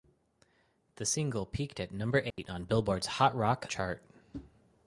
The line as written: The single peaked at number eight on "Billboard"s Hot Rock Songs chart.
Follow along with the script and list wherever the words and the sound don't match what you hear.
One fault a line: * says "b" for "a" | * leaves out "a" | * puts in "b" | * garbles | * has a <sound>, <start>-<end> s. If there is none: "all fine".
* has a dropout, 2.3-2.4 s
* leaves out "Songs"